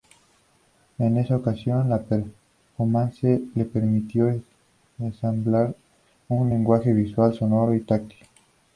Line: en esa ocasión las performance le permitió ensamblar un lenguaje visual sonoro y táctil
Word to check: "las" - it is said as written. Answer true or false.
false